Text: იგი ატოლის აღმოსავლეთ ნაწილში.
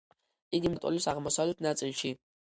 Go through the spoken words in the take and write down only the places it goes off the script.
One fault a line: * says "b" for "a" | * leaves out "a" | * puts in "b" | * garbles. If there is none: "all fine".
all fine